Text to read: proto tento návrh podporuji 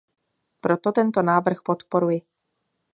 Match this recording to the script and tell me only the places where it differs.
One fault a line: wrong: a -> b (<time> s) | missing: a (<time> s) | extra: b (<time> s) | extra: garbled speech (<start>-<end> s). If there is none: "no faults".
no faults